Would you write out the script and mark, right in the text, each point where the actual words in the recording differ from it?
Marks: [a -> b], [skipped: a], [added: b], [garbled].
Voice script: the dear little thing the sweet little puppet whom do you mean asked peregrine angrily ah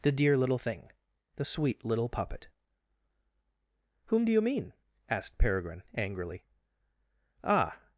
the dear little thing the sweet little puppet whom do you mean asked peregrine angrily ah